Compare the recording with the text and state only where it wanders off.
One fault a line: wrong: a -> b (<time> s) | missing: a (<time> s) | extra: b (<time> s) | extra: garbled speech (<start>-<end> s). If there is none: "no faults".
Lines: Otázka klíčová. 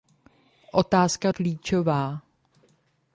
no faults